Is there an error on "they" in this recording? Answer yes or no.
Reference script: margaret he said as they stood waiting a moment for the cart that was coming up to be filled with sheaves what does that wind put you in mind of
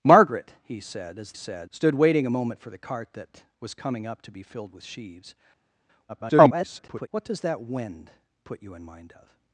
yes